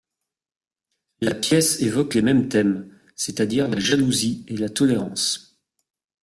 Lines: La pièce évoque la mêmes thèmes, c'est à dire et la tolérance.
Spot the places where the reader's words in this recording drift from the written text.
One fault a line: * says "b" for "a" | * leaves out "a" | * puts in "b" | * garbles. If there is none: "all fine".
* says "les" for "la"
* puts in "la jalousie"